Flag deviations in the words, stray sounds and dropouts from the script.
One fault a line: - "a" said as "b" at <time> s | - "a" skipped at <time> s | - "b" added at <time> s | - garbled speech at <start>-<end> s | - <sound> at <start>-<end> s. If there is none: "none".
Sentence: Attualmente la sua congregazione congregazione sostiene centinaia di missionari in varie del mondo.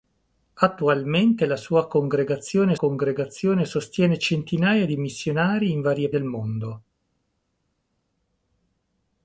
none